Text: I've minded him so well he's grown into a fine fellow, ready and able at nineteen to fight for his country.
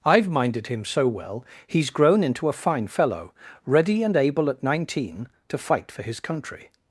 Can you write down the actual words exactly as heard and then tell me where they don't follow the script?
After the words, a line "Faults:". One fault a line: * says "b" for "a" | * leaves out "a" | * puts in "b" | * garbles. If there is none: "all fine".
I've minded him so well he's grown into a fine fellow, ready and able at nineteen to fight for his country.
Faults:
all fine